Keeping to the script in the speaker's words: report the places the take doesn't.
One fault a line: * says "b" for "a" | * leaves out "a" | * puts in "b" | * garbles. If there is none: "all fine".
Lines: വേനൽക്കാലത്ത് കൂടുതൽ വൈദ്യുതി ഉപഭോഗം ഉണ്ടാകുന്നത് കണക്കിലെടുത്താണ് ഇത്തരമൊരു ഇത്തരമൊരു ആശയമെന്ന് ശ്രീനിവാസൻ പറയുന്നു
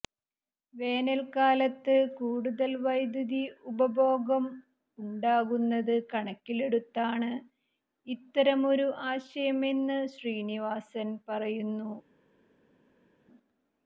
* leaves out "ഇത്തരമൊരു"